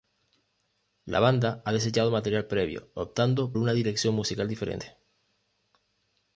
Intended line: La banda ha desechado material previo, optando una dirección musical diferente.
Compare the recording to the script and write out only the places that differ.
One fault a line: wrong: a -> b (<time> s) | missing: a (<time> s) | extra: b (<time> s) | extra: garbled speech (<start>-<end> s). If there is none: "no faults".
no faults